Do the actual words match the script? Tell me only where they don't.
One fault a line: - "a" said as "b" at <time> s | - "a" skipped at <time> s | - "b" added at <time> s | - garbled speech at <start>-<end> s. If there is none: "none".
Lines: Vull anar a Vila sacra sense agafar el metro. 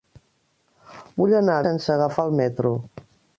- "Vila sacra" skipped at 1.6 s